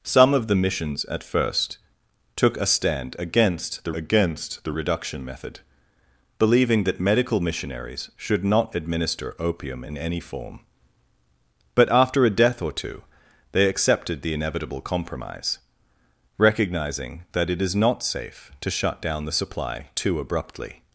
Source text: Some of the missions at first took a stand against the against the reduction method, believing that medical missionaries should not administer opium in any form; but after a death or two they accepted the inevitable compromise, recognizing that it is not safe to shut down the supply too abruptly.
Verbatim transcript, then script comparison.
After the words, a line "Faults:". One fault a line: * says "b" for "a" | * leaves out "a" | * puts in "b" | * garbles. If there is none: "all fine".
Some of the missions at first took a stand against the against the reduction method, believing that medical missionaries should not administer opium in any form; but after a death or two they accepted the inevitable compromise, recognizing that it is not safe to shut down the supply too abruptly.
Faults:
all fine